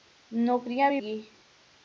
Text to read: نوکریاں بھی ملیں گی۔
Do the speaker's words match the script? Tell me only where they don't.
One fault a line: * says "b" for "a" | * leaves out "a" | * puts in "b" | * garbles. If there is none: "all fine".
* leaves out "ملیں"